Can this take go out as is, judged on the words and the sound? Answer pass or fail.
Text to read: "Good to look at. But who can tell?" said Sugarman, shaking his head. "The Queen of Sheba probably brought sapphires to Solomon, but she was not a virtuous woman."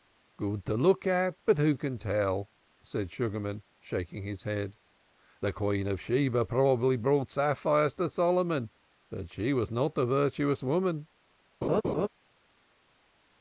fail